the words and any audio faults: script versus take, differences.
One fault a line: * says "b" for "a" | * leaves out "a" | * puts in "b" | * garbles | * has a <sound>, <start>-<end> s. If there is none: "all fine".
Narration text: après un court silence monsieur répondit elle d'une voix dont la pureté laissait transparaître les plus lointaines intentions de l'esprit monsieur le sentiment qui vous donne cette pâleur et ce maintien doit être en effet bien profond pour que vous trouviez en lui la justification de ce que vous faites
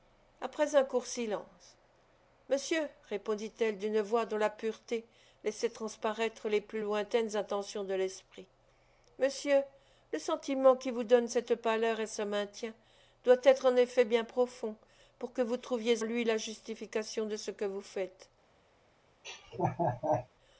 * leaves out "en"
* has a laugh, 19.2-20.3 s